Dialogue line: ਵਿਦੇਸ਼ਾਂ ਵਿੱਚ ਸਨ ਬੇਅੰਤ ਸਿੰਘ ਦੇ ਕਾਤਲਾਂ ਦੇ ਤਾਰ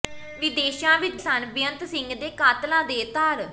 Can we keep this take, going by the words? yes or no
yes